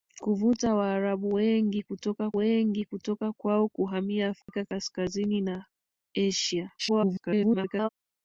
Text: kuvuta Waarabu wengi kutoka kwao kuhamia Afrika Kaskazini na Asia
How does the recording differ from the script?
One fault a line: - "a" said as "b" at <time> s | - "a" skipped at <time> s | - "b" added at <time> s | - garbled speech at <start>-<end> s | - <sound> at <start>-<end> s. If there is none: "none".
- "wengi kutoka" added at 2.4 s
- dropout at 4.4-4.5 s
- garbled speech at 6.8-7.9 s